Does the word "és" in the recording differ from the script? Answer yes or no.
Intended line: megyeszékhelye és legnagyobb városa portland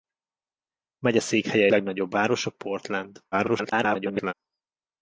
yes